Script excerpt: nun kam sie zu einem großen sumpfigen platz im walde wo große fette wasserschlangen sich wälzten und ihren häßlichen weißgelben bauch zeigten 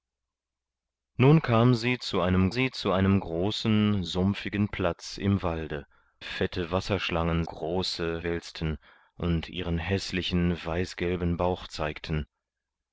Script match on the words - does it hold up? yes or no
no